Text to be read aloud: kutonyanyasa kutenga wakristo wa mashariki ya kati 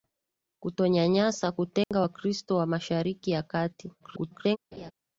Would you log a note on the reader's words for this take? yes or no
yes